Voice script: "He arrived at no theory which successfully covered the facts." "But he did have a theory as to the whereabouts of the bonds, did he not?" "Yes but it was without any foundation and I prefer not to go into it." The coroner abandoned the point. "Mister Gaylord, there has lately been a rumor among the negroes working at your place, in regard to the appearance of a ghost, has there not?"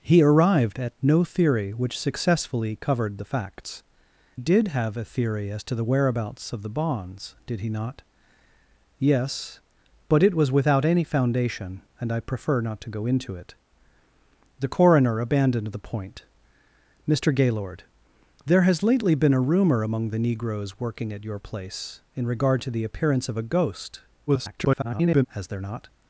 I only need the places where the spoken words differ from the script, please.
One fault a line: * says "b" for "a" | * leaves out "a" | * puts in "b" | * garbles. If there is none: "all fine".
* leaves out "But he"
* garbles